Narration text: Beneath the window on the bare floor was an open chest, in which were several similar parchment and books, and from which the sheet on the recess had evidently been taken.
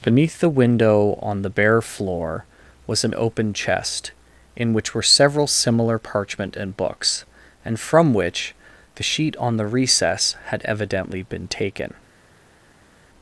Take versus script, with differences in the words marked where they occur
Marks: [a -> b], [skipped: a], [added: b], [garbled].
Beneath the window on the bare floor was an open chest, in which were several similar parchment and books, and from which the sheet on the recess had evidently been taken.